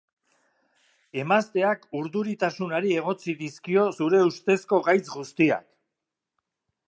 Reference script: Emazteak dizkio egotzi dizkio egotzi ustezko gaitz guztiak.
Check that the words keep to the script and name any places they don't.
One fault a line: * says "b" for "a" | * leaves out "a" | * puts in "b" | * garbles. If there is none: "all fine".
* says "urduritasunari" for "dizkio"
* says "zure" for "egotzi"